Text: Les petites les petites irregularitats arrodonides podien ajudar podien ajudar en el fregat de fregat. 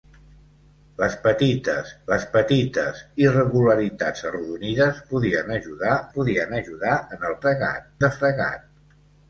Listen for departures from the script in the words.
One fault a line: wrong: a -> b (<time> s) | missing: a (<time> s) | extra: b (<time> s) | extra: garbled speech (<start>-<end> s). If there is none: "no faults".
no faults